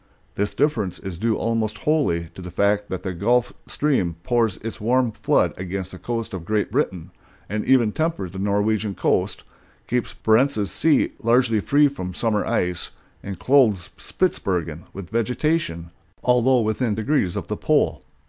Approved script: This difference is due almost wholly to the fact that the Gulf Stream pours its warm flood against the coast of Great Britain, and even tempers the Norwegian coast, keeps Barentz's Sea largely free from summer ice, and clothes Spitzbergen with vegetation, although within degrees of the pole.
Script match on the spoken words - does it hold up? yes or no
yes